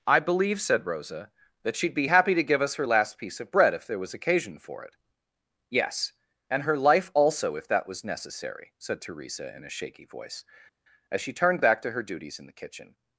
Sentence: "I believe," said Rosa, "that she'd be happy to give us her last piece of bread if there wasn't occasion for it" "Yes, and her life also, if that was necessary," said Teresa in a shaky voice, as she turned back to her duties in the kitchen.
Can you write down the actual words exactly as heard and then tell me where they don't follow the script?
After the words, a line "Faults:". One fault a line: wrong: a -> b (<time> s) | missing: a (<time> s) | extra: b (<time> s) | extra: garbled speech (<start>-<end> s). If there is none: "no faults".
"I believe," said Rosa, "that she'd be happy to give us her last piece of bread if there was occasion for it" "Yes, and her life also, if that was necessary," said Teresa in a shaky voice, as she turned back to her duties in the kitchen.
Faults:
wrong: wasn't -> was (4.0 s)